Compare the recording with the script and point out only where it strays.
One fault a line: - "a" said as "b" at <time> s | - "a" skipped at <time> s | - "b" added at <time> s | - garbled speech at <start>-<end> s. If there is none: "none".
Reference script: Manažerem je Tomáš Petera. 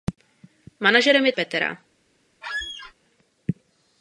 - "Tomáš" skipped at 1.3 s